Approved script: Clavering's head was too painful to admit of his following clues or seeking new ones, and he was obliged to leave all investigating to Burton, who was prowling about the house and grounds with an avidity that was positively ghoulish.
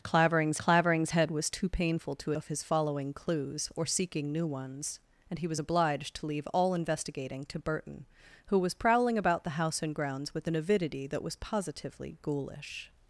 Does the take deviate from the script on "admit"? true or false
true